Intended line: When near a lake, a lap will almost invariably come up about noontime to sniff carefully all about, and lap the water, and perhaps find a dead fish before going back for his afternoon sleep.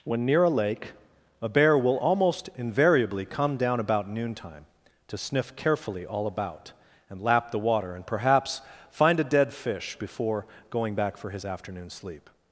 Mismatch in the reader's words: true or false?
true